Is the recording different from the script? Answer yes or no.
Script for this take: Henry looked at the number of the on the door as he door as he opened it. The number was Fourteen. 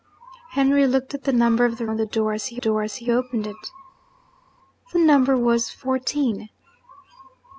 no